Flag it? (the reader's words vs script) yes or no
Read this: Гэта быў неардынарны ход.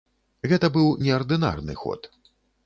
no